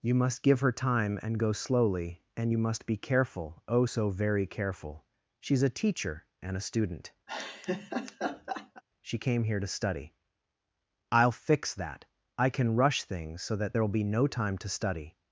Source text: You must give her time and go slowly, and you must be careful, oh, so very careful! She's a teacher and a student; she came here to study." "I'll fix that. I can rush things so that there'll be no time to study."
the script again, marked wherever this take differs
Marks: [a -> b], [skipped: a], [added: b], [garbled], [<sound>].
You must give her time and go slowly, and you must be careful, oh, so very careful! She's a teacher and a student; [laugh] she came here to study." "I'll fix that. I can rush things so that there'll be no time to study."